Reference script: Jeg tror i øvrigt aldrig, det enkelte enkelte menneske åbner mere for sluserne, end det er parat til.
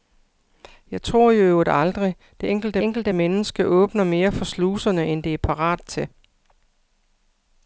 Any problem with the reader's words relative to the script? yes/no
no